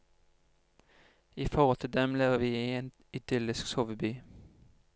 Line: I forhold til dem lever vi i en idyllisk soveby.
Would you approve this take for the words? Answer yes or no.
yes